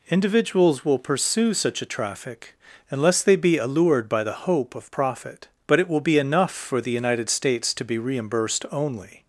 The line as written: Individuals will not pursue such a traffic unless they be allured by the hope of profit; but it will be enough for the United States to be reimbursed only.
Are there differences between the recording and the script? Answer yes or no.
yes